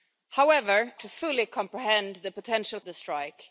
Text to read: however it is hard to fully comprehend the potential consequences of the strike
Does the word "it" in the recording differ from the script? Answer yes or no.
yes